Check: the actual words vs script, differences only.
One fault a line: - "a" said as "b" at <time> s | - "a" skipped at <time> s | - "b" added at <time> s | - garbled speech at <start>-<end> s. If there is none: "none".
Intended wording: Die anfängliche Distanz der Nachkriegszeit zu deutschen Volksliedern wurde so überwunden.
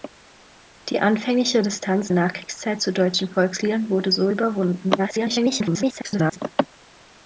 - "der" skipped at 2.1 s
- garbled speech at 5.0-6.4 s